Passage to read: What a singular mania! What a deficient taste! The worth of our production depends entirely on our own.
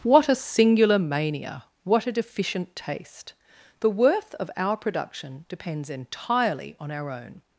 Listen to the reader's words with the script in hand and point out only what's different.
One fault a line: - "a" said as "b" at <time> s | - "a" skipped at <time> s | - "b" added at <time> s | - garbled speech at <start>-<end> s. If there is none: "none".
none